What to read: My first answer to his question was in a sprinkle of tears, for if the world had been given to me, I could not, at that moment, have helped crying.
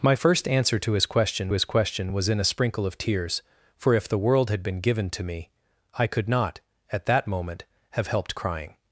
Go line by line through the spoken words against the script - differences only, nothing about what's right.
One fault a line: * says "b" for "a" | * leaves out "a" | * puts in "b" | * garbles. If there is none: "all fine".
* puts in "his question"